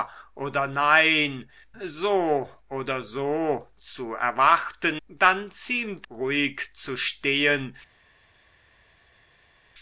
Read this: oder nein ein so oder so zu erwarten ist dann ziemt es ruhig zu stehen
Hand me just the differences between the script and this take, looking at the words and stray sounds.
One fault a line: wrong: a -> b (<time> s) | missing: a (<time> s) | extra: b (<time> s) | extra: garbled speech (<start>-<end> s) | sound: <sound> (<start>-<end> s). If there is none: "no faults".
missing: ein (1.5 s)
missing: ist (5.0 s)
missing: es (6.1 s)